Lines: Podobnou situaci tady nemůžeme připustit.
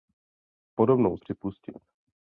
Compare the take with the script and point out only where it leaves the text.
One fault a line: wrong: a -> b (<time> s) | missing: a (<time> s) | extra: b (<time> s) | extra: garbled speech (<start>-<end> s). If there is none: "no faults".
missing: situaci tady nemůžeme (1.2 s)